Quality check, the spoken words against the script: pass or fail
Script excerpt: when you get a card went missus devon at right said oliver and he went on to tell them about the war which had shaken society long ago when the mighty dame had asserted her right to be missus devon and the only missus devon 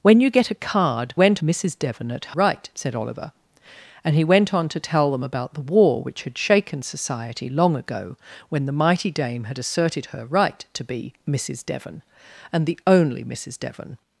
pass